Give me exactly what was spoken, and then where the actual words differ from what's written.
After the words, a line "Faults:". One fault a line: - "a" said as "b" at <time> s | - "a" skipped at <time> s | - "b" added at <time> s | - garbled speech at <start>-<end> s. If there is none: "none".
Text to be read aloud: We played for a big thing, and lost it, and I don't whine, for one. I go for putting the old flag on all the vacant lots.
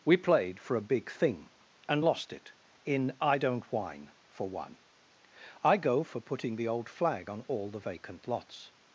We played for a big thing, and lost it, in I don't whine, for one. I go for putting the old flag on all the vacant lots.
Faults:
- "and" said as "in" at 2.9 s